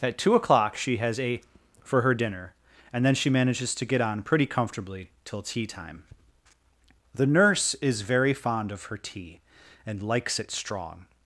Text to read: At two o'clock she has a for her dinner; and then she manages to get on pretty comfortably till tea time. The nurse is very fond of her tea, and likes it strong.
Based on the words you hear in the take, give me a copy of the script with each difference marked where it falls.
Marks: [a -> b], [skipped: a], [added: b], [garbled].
At two o'clock she has a for her dinner; and then she manages to get on pretty comfortably till tea time. The nurse is very fond of her tea, and likes it strong.